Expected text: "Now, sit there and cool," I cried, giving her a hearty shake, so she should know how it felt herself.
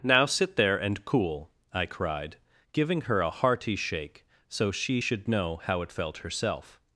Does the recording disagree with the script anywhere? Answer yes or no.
no